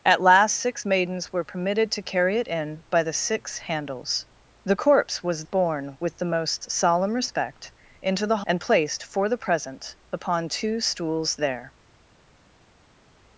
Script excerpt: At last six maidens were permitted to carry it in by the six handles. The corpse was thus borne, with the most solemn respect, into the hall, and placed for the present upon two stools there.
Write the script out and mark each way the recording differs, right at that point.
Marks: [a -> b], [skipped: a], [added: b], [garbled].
At last six maidens were permitted to carry it in by the six handles. The corpse was [skipped: thus] borne, with the most solemn respect, into the [skipped: hall,] and placed for the present upon two stools there.